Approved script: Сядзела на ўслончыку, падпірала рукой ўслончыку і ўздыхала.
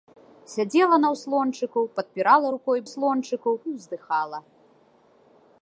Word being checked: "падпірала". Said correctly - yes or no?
yes